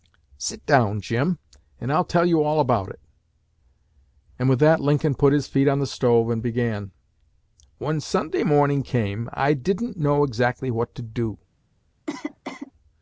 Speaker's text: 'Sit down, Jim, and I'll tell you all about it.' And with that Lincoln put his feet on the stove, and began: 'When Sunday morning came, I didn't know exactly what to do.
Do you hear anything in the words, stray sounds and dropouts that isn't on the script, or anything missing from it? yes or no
yes